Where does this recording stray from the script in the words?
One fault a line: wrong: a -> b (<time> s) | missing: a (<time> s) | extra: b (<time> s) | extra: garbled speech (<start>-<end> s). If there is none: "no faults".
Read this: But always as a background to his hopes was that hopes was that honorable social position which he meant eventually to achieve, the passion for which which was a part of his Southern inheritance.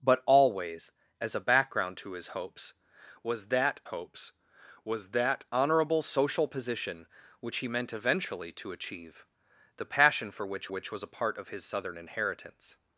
no faults